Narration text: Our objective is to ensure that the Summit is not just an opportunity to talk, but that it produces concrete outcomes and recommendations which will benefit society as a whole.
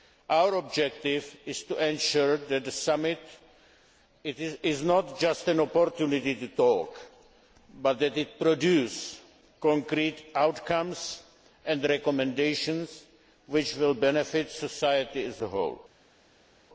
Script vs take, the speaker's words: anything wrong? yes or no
no